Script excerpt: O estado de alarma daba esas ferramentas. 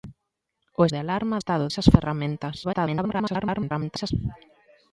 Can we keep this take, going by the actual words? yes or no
no